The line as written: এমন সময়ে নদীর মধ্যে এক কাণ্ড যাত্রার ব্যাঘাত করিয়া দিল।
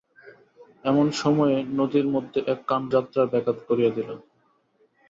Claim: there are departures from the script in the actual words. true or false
false